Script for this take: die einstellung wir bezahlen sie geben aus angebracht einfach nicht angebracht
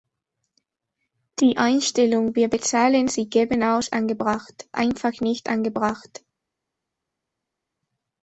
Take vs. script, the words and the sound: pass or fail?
pass